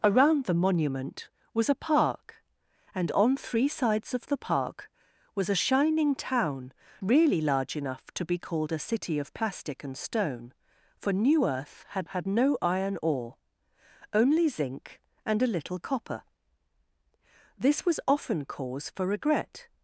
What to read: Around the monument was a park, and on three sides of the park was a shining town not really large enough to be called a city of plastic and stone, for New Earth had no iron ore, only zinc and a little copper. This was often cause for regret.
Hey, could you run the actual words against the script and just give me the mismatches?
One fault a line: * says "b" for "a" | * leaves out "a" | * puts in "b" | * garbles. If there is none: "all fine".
* leaves out "not"
* puts in "had"